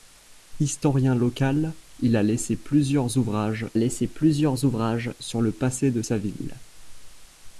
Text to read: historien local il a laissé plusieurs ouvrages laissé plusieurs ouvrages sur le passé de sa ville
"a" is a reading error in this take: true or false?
false